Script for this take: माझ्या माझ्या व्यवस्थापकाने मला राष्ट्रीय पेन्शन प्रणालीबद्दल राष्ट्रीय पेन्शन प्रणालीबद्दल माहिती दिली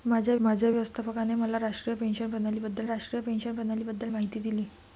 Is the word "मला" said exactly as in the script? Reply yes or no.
yes